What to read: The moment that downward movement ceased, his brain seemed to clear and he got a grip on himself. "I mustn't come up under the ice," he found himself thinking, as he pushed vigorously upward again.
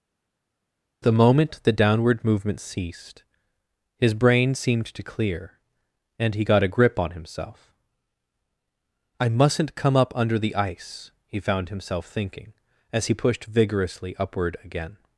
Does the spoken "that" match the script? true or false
false